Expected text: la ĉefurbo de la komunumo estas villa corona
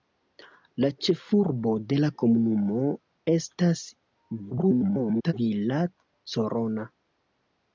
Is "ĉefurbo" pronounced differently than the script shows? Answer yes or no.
no